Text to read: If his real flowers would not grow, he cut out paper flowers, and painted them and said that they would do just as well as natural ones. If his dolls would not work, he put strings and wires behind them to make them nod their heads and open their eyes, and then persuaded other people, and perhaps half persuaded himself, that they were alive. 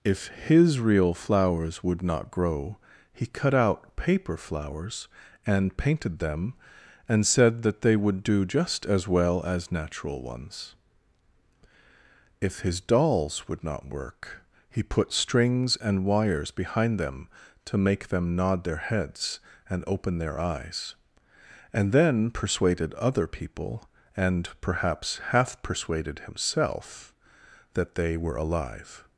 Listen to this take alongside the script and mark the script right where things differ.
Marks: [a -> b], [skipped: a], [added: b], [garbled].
If his real flowers would not grow, he cut out paper flowers, and painted them and said that they would do just as well as natural ones. If his dolls would not work, he put strings and wires behind them to make them nod their heads and open their eyes, and then persuaded other people, and perhaps half persuaded himself, that they were alive.